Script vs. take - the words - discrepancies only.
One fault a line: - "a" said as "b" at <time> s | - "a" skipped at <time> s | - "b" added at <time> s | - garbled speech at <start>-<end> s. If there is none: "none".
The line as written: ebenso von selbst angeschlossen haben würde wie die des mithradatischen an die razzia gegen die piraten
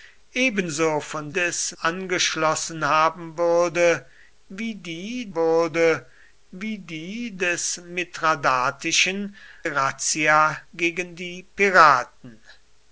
- "selbst" said as "des" at 1.3 s
- "würde wie die" added at 5.3 s
- "an die" skipped at 9.4 s